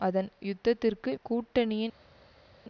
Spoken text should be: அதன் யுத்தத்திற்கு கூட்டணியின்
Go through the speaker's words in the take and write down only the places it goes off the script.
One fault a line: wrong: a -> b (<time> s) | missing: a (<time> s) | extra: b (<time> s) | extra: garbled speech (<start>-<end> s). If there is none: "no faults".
no faults